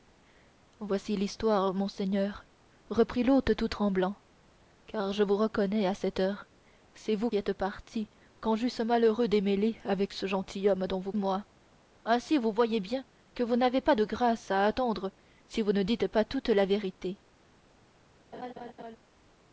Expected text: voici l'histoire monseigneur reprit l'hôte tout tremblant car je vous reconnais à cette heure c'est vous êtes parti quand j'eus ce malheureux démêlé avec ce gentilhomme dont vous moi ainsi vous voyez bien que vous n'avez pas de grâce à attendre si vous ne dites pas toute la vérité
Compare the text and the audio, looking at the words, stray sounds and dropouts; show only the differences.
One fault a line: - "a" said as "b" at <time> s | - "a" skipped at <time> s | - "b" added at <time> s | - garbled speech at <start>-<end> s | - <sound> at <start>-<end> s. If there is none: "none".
- laugh at 18.3-19.0 s